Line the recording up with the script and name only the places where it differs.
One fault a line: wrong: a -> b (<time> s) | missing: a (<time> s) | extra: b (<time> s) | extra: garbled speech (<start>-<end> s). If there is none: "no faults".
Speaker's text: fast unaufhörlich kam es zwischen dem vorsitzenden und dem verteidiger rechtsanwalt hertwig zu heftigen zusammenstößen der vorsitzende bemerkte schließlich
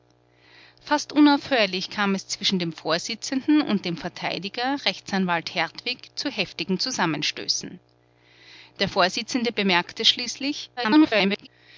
extra: garbled speech (10.8-11.5 s)